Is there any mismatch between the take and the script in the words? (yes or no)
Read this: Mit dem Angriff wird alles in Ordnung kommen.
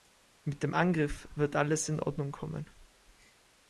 no